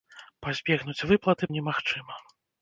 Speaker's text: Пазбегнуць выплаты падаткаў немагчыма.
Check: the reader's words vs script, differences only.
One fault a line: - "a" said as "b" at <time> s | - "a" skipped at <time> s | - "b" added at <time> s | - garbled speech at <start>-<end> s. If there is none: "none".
- "падаткаў" skipped at 1.5 s